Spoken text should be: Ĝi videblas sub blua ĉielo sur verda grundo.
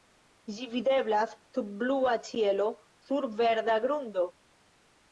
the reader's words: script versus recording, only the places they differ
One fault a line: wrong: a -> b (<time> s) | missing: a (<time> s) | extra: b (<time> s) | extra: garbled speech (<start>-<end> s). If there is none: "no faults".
no faults